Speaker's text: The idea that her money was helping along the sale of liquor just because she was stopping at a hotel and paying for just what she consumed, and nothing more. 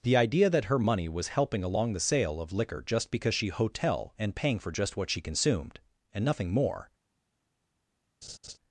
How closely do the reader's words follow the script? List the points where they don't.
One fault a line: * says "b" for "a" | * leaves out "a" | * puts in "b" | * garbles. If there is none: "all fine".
* leaves out "was stopping at a"